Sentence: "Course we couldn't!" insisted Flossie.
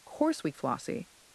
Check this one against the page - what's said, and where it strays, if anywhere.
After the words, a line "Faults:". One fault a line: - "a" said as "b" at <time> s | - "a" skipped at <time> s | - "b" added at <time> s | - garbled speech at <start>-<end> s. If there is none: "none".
"Course we Flossie.
Faults:
- "couldn't insisted" skipped at 0.5 s